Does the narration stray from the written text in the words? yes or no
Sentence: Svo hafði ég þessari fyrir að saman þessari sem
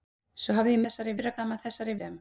no